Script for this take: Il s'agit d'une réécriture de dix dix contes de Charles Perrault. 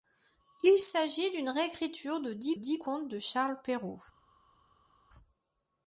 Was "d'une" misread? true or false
false